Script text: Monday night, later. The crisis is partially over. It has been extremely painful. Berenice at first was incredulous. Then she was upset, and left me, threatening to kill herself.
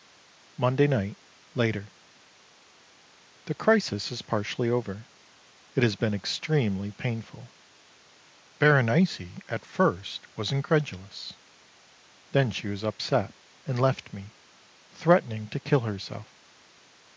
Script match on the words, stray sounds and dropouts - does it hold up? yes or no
yes